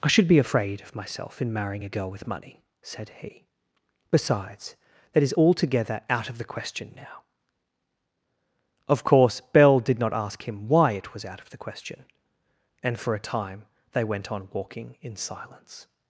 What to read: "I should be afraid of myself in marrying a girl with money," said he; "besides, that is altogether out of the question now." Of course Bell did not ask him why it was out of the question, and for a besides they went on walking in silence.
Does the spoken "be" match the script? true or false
true